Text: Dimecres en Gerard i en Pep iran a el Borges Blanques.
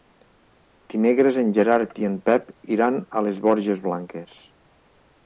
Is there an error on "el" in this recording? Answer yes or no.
yes